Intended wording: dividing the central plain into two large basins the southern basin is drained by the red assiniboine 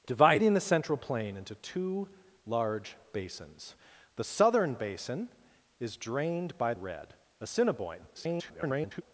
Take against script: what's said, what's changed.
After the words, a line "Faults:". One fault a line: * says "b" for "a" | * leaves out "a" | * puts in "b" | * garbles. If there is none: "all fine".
dividing the central plain into two large basins the southern basin is drained by red assiniboine [garbled]
Faults:
* leaves out "the"
* garbles